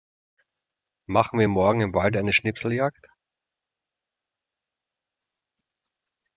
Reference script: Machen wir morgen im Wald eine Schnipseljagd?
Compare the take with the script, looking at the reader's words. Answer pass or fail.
pass